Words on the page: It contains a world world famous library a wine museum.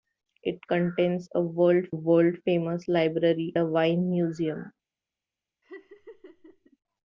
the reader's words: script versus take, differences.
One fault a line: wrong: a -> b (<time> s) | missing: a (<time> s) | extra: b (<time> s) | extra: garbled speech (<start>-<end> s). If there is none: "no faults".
no faults